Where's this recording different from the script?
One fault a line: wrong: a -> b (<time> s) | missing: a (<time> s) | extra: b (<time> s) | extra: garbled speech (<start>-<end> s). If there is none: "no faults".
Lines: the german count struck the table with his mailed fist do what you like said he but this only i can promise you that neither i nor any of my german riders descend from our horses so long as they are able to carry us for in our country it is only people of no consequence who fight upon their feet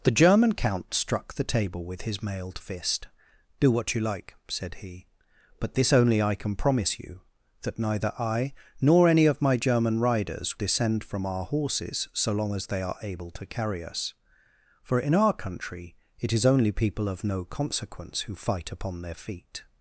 no faults